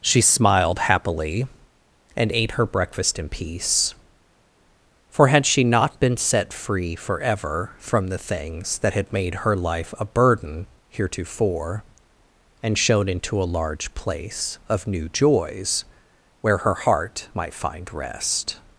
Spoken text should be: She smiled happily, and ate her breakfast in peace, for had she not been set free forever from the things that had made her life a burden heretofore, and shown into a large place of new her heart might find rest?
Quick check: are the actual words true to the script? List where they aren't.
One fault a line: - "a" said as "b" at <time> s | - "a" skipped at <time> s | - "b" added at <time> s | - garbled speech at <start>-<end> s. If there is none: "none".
- "joys where" added at 15.1 s